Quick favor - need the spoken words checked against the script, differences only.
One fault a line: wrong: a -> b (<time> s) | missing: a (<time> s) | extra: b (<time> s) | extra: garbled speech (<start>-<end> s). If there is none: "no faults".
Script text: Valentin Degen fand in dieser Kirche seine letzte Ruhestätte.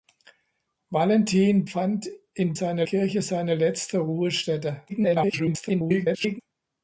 missing: Degen (1.7 s)
wrong: dieser -> seine (2.5 s)
extra: garbled speech (4.9-6.4 s)